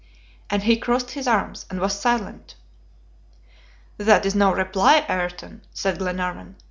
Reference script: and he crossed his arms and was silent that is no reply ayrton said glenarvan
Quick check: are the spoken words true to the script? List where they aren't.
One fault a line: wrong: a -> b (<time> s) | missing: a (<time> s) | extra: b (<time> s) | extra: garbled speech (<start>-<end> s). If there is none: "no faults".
no faults